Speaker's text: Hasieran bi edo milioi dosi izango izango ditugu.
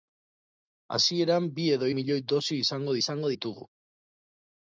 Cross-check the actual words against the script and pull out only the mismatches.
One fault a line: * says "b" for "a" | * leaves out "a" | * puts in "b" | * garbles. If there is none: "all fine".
all fine